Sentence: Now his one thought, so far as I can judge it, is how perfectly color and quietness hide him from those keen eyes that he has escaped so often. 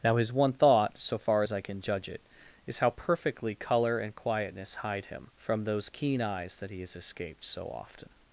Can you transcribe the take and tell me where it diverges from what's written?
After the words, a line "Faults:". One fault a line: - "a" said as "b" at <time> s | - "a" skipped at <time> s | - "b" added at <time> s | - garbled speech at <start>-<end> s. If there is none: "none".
Now his one thought, so far as I can judge it, is how perfectly color and quietness hide him from those keen eyes that he has escaped so often.
Faults:
none